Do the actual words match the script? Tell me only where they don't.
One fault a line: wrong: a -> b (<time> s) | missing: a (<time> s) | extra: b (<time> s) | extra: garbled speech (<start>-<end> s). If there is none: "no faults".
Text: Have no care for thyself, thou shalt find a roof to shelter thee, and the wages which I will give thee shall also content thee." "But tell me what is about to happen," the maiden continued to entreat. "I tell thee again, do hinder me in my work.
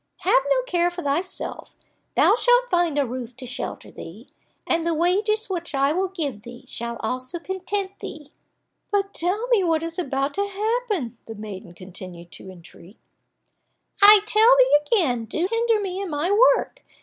no faults